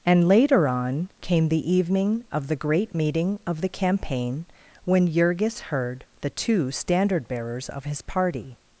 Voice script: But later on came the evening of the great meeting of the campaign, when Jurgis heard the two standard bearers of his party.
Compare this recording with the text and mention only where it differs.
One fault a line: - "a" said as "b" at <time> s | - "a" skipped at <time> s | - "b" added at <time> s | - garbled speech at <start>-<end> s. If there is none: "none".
- "But" said as "And" at 0.1 s